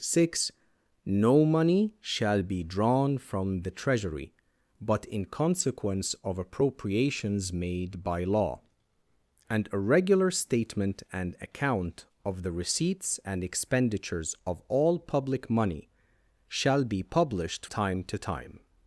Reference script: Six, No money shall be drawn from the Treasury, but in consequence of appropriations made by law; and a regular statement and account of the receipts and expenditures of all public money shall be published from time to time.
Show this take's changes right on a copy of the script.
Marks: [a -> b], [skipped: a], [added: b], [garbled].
Six, No money shall be drawn from the Treasury, but in consequence of appropriations made by law; and a regular statement and account of the receipts and expenditures of all public money shall be published [skipped: from] time to time.